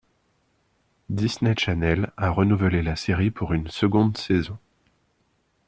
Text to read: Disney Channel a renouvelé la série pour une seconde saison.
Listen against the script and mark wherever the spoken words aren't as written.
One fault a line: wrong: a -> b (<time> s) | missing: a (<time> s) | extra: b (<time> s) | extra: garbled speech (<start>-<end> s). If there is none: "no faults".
no faults